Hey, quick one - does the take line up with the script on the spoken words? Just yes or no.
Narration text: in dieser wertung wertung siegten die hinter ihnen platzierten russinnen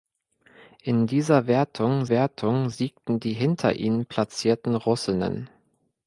yes